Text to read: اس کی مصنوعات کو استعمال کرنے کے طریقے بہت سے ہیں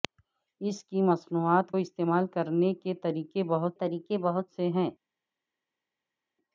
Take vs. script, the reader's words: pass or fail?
fail